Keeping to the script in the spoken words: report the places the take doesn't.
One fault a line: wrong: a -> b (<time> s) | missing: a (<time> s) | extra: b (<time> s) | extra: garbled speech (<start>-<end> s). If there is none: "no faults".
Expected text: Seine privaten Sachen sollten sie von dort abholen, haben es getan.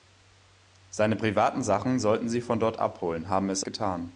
no faults